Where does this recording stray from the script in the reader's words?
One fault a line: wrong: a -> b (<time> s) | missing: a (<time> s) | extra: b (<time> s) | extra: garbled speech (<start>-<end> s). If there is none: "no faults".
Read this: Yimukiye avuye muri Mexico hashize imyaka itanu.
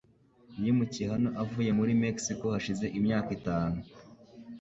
extra: hano (1.1 s)